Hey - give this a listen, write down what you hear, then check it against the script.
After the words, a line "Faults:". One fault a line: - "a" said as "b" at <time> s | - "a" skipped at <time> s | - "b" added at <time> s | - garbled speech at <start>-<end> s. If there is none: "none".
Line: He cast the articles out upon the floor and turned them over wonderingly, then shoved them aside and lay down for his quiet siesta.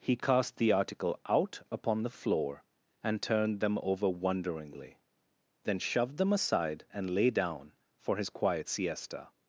He cast the article out upon the floor and turned them over wonderingly, then shoved them aside and lay down for his quiet siesta.
Faults:
- "articles" said as "article" at 0.7 s